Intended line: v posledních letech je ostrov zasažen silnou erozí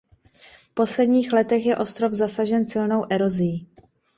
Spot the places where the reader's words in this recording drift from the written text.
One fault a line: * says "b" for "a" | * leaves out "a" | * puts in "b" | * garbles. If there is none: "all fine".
all fine